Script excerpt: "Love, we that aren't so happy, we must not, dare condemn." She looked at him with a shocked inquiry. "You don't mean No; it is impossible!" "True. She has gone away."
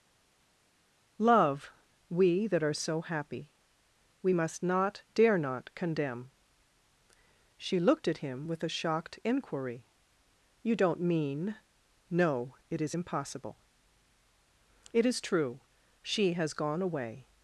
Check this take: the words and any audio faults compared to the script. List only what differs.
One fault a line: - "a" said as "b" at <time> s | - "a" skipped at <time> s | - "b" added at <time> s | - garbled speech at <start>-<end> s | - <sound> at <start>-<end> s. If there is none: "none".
- "aren't" said as "are" at 2.6 s
- "not" added at 5.4 s
- "It is" added at 14.9 s